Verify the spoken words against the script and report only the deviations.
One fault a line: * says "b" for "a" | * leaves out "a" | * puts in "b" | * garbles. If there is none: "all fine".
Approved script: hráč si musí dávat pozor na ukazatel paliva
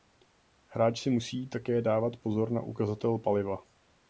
* puts in "také"